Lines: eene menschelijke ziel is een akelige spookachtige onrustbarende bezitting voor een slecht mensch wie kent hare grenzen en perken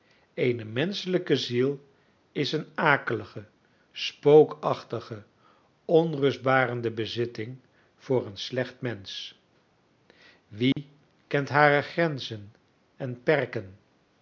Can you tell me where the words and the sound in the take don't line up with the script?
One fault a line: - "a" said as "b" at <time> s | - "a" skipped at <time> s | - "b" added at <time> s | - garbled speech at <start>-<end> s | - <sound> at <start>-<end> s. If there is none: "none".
- dropout at 10.7-10.8 s